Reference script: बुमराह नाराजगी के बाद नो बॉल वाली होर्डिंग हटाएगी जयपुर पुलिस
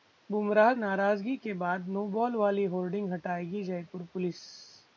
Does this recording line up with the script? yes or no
yes